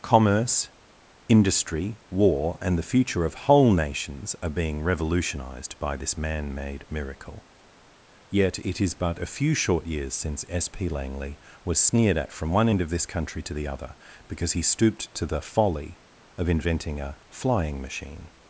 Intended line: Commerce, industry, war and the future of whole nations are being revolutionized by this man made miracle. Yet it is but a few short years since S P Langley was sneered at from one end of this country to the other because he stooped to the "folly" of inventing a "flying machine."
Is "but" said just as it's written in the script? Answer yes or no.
yes